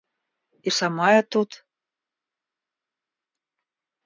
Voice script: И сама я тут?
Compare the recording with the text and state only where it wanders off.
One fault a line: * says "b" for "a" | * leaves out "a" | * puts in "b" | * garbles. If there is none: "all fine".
all fine